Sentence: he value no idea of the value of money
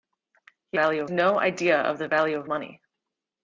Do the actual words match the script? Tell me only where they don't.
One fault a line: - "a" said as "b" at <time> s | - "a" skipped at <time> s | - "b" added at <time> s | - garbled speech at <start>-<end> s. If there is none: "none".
none